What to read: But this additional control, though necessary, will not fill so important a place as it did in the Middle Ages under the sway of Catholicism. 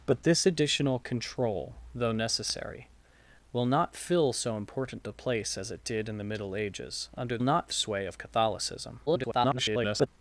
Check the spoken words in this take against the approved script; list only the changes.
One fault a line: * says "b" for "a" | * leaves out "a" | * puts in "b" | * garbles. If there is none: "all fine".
* says "not" for "the"
* garbles